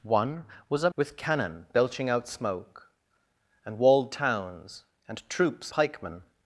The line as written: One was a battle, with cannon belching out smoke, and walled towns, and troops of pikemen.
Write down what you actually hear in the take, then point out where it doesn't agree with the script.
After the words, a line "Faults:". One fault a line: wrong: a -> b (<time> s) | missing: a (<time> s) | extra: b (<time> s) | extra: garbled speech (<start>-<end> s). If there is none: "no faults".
One was a with cannon belching out smoke, and walled towns, and troops pikemen.
Faults:
missing: battle (0.9 s)
missing: of (5.7 s)